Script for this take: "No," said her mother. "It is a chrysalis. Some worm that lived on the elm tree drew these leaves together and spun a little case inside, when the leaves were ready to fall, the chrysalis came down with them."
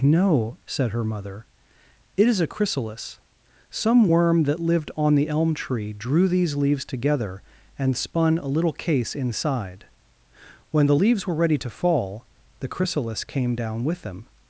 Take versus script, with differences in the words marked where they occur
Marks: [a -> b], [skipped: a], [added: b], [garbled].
"No," said her mother. "It is a chrysalis. Some worm that lived on the elm tree drew these leaves together and spun a little case inside, when the leaves were ready to fall, the chrysalis came down with them."